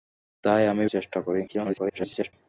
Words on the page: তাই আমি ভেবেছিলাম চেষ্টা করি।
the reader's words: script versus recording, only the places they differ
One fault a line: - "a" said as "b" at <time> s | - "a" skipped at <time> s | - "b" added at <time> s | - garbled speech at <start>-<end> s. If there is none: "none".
- "ভেবেছিলাম" skipped at 0.8 s
- garbled speech at 1.5-2.3 s